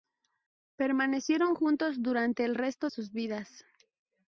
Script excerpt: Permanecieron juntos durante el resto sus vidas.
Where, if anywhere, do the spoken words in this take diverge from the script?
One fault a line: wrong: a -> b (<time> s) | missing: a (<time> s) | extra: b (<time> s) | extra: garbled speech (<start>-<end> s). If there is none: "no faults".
no faults